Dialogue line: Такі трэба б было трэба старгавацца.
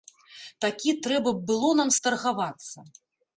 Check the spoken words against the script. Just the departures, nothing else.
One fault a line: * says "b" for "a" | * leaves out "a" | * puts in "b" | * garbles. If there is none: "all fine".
* says "нам" for "трэба"